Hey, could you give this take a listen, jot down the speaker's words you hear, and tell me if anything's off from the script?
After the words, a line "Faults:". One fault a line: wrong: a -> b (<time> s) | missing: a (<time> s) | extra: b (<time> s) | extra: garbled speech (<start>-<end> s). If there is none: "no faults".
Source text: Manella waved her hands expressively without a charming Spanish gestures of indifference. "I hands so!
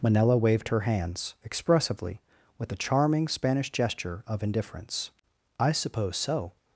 Manella waved her hands expressively with a charming Spanish gesture of indifference. "I suppose so!
Faults:
wrong: without -> with (2.6 s)
wrong: gestures -> gesture (3.7 s)
wrong: hands -> suppose (5.7 s)